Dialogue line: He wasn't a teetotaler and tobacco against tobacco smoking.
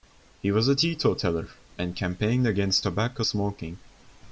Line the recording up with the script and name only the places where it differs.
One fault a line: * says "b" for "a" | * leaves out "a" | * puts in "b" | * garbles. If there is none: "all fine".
* says "was" for "wasn't"
* says "campaigned" for "tobacco"